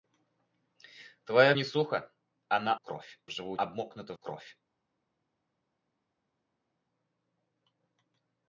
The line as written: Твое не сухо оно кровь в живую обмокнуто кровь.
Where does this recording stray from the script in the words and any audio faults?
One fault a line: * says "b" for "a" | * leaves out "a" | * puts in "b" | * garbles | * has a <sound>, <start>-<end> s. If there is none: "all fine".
all fine